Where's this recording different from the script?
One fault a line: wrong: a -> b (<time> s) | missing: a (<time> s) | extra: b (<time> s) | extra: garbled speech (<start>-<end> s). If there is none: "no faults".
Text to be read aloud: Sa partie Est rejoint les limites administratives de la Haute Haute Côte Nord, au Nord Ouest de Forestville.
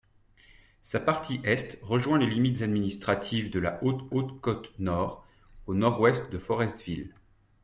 no faults